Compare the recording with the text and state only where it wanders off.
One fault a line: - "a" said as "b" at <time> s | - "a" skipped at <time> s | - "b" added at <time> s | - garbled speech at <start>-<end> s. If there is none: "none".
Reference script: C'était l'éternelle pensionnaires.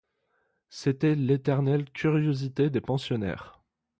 - "curiosité des" added at 1.9 s